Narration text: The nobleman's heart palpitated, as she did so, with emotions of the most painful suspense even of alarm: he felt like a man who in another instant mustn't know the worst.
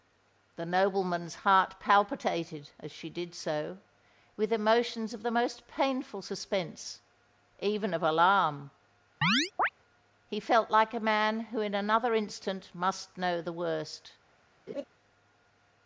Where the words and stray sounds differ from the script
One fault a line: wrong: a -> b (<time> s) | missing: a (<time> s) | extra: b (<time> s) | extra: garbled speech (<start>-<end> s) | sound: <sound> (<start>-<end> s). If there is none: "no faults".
sound: chirp (9.2-9.7 s)
wrong: mustn't -> must (12.7 s)
sound: laugh (14.7-14.8 s)